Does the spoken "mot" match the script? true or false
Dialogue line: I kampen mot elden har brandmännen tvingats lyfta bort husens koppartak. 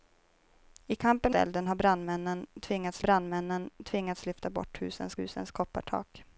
false